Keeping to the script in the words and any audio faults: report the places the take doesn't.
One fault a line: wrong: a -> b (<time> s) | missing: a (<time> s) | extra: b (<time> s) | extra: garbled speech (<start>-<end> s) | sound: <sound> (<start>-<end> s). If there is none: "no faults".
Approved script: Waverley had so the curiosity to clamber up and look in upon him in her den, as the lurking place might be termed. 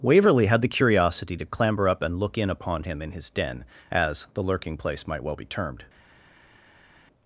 missing: so (0.6 s)
wrong: her -> his (3.1 s)
extra: well (5.2 s)